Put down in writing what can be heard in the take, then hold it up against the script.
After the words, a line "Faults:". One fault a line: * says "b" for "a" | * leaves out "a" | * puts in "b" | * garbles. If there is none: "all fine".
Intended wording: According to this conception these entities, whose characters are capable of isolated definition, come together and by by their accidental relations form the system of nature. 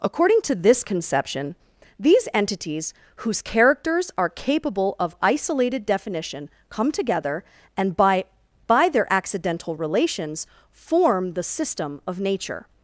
According to this conception these entities, whose characters are capable of isolated definition, come together and by by their accidental relations form the system of nature.
Faults:
all fine